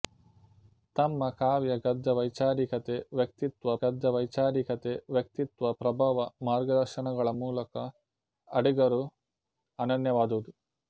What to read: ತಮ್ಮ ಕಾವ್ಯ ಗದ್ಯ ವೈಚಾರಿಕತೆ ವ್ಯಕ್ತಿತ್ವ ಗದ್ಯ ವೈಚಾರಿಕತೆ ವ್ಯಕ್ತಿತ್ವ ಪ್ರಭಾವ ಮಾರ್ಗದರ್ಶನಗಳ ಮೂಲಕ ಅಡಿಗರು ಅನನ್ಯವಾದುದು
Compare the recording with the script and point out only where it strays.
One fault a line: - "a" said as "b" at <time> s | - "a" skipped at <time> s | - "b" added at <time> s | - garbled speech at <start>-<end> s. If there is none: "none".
none